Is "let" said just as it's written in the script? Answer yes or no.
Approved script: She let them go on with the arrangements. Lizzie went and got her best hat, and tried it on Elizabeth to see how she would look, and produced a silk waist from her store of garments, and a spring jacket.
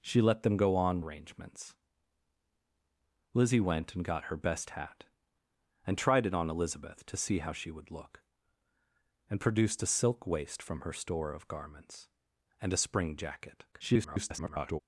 yes